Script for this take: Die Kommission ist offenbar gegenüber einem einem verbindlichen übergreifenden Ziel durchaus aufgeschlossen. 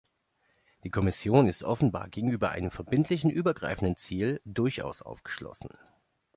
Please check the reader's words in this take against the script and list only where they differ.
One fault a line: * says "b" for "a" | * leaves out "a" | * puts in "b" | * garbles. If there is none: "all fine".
* leaves out "einem"